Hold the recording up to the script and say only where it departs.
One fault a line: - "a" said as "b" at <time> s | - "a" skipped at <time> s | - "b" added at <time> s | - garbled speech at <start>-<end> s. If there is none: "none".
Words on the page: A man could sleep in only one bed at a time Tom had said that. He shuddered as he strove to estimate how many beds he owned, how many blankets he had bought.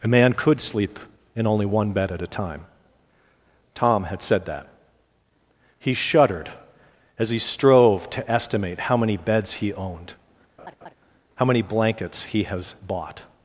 - "had" said as "has" at 12.4 s